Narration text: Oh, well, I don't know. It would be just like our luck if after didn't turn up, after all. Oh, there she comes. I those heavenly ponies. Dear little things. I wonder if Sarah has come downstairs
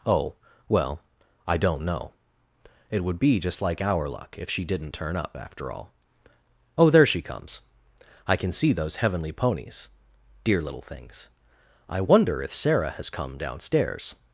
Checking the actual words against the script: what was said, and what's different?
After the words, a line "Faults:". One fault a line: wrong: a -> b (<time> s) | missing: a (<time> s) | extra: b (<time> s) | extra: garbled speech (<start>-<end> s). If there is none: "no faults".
Oh, well, I don't know. It would be just like our luck if she didn't turn up, after all. Oh, there she comes. I can see those heavenly ponies. Dear little things. I wonder if Sarah has come downstairs
Faults:
wrong: after -> she (4.5 s)
extra: can see (8.4 s)